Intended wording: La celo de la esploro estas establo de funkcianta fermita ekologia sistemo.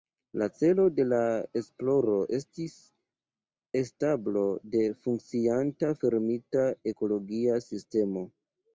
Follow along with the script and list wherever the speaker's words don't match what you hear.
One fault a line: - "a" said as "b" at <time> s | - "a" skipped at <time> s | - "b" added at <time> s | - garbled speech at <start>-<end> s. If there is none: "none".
- "estas" said as "estis" at 2.4 s